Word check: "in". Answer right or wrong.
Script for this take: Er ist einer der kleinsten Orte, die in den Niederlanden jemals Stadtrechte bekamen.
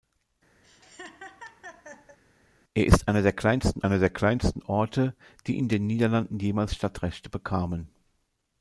right